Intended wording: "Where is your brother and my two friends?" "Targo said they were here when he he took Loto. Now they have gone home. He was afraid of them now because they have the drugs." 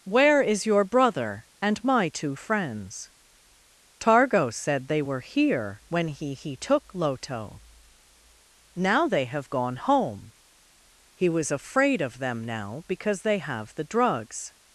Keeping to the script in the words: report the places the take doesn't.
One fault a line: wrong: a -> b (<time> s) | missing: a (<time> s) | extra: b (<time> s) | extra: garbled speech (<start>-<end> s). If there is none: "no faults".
no faults